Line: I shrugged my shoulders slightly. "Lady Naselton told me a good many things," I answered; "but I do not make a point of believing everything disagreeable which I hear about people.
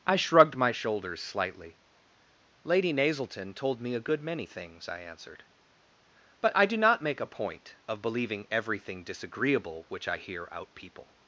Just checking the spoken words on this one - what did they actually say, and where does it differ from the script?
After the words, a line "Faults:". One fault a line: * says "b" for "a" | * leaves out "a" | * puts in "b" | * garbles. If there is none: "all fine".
I shrugged my shoulders slightly. "Lady Naselton told me a good many things," I answered; "but I do not make a point of believing everything disagreeable which I hear out people.
Faults:
* says "out" for "about"